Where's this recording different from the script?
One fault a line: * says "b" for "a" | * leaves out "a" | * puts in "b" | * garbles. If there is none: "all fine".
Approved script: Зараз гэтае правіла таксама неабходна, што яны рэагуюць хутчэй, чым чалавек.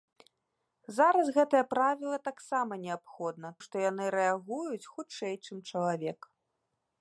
all fine